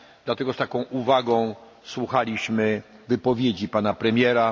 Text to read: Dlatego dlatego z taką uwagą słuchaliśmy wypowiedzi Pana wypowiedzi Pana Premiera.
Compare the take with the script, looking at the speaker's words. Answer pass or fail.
fail